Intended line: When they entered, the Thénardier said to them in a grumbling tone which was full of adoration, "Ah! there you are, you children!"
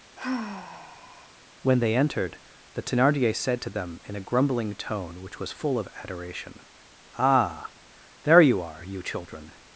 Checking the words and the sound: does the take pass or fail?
fail